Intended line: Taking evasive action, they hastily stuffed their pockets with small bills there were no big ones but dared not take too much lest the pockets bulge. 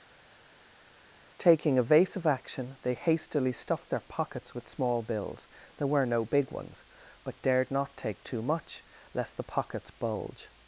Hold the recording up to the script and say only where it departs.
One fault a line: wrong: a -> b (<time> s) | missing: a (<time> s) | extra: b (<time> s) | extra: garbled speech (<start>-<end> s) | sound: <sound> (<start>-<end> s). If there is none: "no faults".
no faults